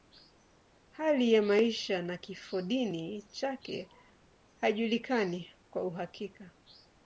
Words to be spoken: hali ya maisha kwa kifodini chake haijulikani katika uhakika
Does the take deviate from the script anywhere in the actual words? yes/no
yes